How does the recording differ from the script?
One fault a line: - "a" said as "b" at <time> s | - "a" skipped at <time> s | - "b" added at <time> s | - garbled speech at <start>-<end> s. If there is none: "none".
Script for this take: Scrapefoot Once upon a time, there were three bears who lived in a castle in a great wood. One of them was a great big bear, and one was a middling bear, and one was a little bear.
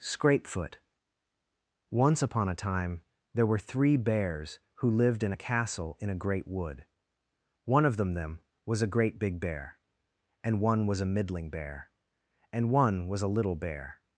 - "them" added at 8.1 s